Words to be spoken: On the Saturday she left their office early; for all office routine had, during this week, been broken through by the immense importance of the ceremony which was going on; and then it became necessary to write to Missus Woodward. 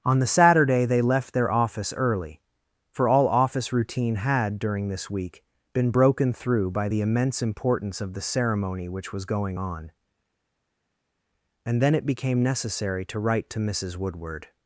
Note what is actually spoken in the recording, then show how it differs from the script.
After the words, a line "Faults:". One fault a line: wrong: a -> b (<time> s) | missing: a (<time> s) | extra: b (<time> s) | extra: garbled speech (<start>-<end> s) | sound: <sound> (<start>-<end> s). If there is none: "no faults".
On the Saturday they left their office early; for all office routine had, during this week, been broken through by the immense importance of the ceremony which was going on; and then it became necessary to write to Missus Woodward.
Faults:
wrong: she -> they (0.8 s)